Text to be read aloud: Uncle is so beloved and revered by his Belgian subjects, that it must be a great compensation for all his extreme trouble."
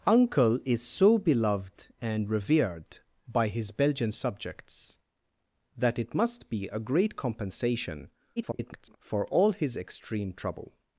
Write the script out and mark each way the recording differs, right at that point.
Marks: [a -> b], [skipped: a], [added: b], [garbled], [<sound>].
Uncle is so beloved and revered by his Belgian subjects, that it must be a great compensation [garbled] for all his extreme trouble."